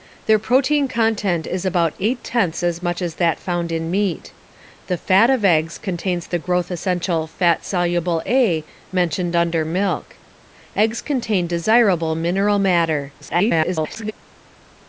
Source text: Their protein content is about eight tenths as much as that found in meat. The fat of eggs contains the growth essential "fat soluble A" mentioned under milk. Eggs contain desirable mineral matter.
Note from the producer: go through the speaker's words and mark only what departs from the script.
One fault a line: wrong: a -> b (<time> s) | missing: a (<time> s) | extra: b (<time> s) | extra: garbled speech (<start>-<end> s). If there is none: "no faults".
extra: garbled speech (13.2-14.1 s)